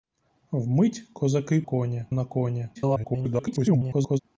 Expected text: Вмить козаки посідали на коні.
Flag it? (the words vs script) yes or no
yes